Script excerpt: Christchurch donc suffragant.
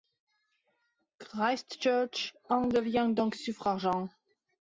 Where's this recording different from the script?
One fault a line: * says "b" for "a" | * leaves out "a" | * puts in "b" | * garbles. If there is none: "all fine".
* puts in "en devient"